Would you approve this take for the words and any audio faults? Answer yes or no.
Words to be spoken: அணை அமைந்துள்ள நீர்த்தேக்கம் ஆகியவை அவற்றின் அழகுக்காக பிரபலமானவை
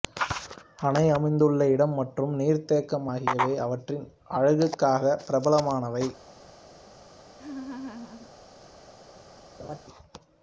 no